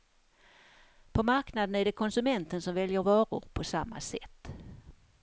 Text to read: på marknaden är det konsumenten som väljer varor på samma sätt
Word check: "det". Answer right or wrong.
right